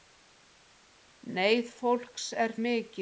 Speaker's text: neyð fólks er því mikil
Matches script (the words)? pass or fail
fail